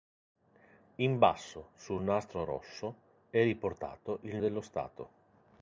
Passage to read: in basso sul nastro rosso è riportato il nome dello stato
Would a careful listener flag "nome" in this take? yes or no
yes